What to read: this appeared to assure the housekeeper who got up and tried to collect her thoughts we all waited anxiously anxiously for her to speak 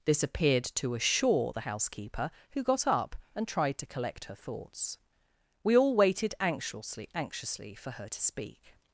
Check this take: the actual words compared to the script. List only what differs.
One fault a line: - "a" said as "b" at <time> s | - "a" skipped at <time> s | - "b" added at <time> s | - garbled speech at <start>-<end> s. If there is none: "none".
none